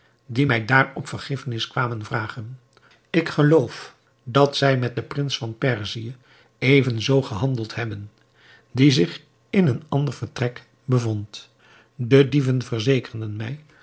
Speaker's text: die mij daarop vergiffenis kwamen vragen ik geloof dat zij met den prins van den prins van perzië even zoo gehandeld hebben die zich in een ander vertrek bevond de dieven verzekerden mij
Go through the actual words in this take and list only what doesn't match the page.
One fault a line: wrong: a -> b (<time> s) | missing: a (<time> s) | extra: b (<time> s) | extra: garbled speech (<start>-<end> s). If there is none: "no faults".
missing: den prins van (5.6 s)